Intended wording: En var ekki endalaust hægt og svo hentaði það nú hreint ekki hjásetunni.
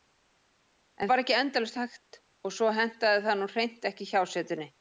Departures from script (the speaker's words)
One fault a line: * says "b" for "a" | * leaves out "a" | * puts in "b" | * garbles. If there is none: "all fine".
all fine